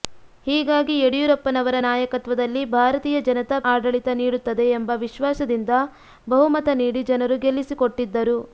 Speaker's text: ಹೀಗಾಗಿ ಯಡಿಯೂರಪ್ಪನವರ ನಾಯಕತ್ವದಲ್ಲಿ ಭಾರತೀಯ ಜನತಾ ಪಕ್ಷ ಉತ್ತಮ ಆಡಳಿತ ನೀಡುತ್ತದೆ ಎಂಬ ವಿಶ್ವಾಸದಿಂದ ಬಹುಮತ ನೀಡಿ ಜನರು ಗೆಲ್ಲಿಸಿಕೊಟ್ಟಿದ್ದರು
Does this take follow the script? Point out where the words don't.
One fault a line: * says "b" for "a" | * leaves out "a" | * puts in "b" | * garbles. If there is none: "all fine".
* leaves out "ಪಕ್ಷ ಉತ್ತಮ"